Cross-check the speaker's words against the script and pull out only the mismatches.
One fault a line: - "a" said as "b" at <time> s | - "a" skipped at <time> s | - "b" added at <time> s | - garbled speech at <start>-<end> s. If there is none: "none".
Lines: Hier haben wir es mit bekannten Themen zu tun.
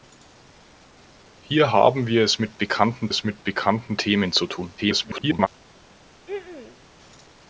- "es mit bekannten" added at 3.1 s
- garbled speech at 4.8-5.5 s